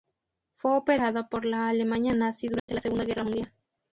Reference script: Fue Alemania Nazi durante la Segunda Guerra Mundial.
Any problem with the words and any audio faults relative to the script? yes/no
yes